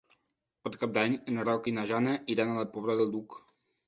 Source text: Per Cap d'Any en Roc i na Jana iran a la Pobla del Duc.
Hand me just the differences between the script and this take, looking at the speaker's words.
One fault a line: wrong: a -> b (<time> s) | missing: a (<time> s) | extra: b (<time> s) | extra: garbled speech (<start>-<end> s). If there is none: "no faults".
no faults